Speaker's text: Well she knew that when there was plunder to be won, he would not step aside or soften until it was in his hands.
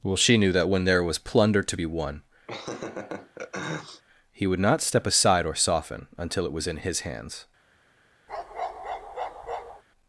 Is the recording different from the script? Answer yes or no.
no